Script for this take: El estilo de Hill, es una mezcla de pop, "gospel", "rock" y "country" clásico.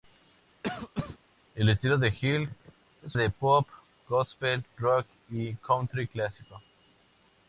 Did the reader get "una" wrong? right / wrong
wrong